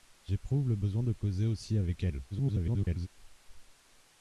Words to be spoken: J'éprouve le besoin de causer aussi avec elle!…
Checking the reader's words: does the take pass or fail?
fail